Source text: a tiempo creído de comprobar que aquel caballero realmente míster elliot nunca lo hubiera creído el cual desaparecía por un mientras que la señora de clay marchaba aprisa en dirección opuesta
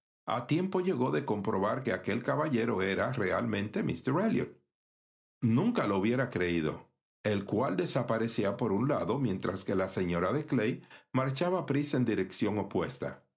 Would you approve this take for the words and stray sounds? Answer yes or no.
no